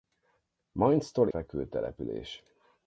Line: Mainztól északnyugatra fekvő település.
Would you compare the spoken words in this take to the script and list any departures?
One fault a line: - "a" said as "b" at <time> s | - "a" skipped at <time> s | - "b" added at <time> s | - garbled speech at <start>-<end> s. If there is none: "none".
- "északnyugatra" skipped at 1.3 s